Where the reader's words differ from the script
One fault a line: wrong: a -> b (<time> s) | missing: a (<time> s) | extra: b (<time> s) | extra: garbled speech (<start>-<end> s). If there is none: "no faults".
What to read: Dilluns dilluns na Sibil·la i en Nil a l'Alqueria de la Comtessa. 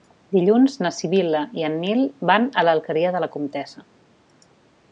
missing: dilluns (0.8 s)
extra: van (2.3 s)